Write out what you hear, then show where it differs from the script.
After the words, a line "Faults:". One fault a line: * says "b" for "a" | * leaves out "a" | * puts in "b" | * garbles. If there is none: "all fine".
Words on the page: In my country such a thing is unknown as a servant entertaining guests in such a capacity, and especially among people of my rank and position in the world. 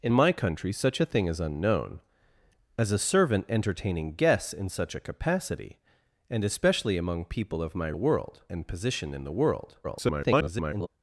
In my country such a thing is unknown as a servant entertaining guests in such a capacity, and especially among people of my world and position in the world. [garbled]
Faults:
* says "world" for "rank"
* garbles